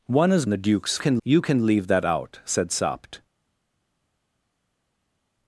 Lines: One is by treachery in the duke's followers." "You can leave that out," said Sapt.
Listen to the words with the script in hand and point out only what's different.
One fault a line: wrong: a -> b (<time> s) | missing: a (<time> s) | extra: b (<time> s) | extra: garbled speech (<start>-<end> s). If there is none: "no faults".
missing: by treachery in (0.5 s)
wrong: followers -> can (1.0 s)